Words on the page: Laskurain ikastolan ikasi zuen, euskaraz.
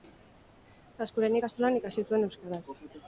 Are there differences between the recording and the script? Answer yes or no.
no